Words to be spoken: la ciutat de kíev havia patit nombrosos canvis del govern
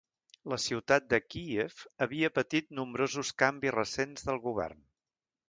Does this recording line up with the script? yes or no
no